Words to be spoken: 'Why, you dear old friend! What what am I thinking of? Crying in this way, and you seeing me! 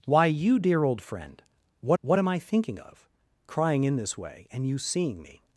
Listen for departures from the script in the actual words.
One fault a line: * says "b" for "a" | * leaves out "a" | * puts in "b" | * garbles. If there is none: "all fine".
all fine